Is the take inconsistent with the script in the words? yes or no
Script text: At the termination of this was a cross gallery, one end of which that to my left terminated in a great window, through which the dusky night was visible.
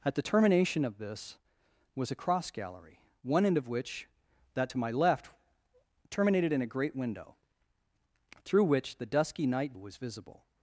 no